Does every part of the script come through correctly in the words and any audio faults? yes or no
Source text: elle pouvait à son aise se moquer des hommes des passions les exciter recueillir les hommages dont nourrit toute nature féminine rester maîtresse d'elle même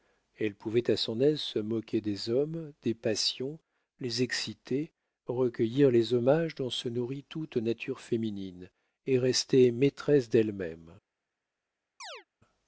no